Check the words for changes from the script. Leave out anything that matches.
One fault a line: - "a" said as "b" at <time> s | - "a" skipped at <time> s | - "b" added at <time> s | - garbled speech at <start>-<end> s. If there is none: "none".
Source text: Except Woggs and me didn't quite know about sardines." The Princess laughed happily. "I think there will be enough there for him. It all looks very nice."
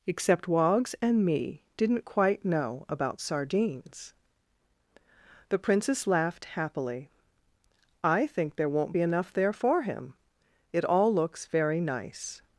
- "will" said as "won't" at 8.7 s